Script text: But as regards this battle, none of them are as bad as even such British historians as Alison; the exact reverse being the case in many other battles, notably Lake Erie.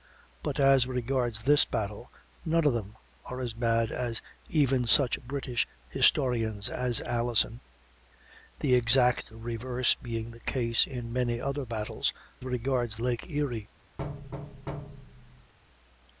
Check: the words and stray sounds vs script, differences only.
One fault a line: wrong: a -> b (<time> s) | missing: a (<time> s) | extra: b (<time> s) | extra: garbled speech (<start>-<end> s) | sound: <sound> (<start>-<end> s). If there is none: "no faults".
wrong: notably -> regards (12.4 s)
sound: thud (14.0-15.5 s)